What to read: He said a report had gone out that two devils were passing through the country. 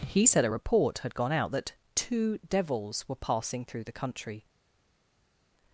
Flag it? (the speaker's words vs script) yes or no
no